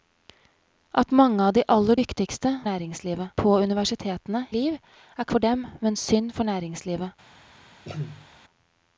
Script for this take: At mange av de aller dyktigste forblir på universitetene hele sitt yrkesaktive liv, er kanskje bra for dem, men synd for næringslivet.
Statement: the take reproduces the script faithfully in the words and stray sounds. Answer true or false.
false